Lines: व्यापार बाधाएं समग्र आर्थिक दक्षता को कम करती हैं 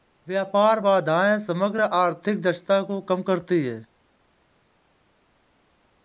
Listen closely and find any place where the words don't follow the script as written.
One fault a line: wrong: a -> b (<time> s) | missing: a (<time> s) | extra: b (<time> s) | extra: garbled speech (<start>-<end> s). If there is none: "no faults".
no faults